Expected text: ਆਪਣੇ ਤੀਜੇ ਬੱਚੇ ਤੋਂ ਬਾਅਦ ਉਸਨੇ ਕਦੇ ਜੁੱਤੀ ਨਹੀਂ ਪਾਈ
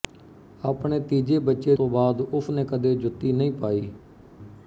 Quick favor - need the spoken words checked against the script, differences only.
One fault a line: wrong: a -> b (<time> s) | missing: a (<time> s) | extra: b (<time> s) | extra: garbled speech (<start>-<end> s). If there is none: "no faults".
no faults